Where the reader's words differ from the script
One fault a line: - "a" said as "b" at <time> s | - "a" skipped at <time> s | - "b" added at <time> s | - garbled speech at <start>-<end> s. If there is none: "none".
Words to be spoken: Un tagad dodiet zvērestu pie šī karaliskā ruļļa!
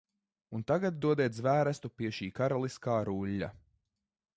none